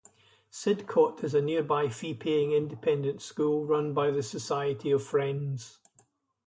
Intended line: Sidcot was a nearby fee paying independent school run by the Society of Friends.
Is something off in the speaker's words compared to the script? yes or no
yes